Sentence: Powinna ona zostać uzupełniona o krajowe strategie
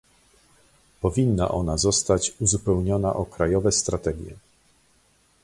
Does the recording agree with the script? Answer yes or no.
yes